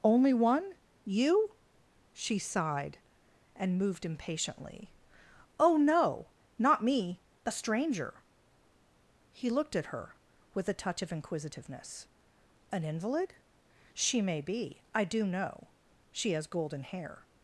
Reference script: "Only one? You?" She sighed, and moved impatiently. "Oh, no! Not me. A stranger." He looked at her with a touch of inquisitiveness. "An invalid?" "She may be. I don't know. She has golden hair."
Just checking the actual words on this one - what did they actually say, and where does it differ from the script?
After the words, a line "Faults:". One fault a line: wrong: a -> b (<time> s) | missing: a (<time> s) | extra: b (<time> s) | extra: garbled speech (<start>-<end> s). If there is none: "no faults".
"Only one? You?" She sighed, and moved impatiently. "Oh, no! Not me. A stranger." He looked at her with a touch of inquisitiveness. "An invalid?" "She may be. I do know. She has golden hair."
Faults:
wrong: don't -> do (15.0 s)